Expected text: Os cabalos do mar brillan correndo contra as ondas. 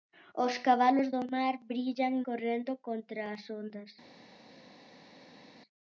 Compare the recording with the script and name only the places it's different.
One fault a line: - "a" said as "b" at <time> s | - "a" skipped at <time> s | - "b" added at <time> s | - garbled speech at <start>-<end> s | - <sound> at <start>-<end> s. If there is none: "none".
none